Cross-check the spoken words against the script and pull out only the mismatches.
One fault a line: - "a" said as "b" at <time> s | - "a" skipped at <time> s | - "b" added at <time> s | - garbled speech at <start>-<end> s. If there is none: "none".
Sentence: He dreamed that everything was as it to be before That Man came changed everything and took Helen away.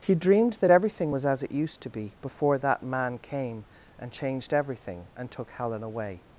- "used" added at 1.5 s
- "and" added at 4.0 s